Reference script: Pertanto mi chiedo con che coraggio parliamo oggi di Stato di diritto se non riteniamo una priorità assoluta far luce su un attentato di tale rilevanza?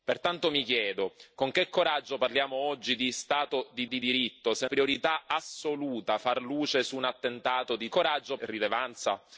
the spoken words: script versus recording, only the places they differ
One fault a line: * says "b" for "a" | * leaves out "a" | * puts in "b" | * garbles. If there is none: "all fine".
* puts in "di"
* leaves out "non riteniamo una"
* says "coraggio" for "tale"